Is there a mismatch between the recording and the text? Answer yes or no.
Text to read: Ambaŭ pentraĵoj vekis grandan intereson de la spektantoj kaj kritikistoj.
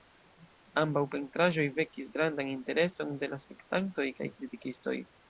no